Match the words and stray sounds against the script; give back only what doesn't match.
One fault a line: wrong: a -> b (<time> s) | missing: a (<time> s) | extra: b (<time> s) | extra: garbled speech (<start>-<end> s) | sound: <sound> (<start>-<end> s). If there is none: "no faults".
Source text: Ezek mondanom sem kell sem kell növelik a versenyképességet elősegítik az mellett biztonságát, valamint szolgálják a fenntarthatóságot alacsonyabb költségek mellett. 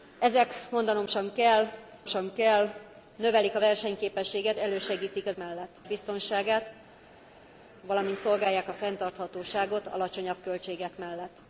no faults